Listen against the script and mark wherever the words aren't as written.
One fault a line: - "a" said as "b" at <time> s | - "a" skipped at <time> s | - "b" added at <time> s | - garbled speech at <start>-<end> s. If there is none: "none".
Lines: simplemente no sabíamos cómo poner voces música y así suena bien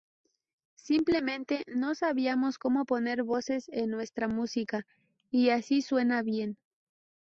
- "en nuestra" added at 3.7 s